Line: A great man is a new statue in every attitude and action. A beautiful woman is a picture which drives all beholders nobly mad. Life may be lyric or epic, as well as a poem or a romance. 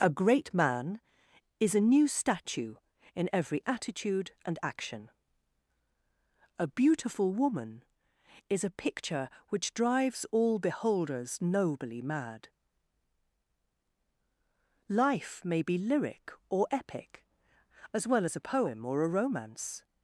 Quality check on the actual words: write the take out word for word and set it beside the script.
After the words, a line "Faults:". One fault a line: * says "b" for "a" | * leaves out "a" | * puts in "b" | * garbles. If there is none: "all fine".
A great man is a new statue in every attitude and action. A beautiful woman is a picture which drives all beholders nobly mad. Life may be lyric or epic, as well as a poem or a romance.
Faults:
all fine